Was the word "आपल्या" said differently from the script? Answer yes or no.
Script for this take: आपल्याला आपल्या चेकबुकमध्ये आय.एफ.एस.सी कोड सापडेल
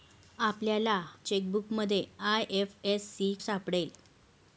yes